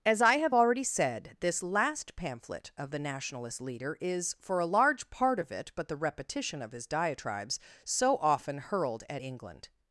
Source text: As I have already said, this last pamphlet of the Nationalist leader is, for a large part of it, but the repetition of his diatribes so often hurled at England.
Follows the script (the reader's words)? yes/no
yes